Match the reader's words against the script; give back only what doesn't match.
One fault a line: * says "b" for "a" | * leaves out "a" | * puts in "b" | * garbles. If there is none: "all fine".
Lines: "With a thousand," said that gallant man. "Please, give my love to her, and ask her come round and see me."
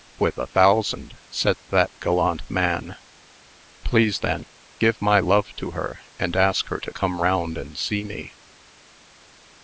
* puts in "then"
* puts in "to"